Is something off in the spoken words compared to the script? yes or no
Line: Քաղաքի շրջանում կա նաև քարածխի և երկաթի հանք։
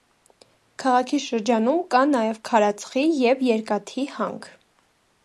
no